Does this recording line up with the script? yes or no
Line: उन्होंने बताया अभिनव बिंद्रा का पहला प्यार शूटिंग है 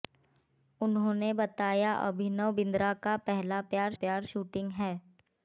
no